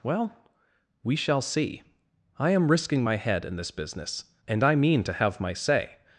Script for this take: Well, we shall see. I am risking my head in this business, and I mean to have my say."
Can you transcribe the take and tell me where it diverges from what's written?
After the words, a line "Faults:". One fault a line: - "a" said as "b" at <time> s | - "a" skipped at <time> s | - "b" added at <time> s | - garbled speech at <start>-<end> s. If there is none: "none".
Well, we shall see. I am risking my head in this business, and I mean to have my say."
Faults:
none